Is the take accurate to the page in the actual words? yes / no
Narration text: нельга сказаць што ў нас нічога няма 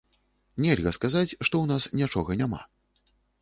yes